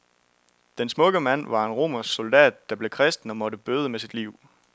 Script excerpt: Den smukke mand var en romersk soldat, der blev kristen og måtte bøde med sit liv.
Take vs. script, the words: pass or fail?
pass